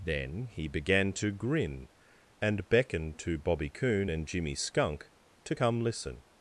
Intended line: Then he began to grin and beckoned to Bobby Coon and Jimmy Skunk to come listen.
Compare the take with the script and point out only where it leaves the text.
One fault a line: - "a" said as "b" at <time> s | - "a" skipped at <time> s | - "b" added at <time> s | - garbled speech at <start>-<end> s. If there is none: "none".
none